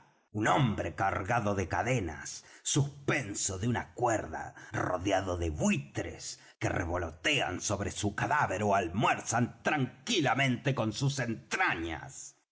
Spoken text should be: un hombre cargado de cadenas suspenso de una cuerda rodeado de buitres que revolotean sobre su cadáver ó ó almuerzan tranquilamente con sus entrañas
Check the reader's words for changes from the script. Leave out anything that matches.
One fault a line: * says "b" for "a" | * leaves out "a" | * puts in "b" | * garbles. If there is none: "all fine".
* leaves out "ó"